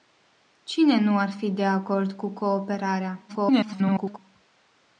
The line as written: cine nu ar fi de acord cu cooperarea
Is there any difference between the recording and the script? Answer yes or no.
yes